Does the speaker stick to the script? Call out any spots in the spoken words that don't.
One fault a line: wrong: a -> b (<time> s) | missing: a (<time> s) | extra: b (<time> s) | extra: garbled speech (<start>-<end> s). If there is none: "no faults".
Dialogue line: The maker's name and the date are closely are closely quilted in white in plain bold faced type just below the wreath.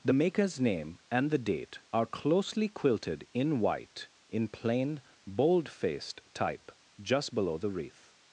missing: are closely (2.7 s)